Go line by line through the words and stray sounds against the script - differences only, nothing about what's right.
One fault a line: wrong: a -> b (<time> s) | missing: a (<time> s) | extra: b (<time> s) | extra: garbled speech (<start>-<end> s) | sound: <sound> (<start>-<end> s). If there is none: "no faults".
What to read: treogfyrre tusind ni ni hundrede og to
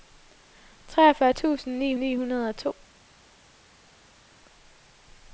no faults